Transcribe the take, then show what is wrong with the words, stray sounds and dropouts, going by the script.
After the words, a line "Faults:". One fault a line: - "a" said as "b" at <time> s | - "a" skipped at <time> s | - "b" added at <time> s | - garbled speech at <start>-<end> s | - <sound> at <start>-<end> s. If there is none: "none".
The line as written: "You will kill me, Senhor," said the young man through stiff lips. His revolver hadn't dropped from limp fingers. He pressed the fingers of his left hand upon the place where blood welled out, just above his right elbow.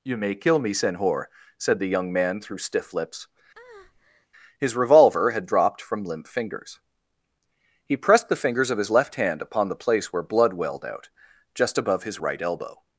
"You may kill me, Senhor," said the young man through stiff lips. His revolver had dropped from limp fingers. He pressed the fingers of his left hand upon the place where blood welled out, just above his right elbow.
Faults:
- "will" said as "may" at 0.2 s
- breath at 3.5-4.3 s
- "hadn't" said as "had" at 5.3 s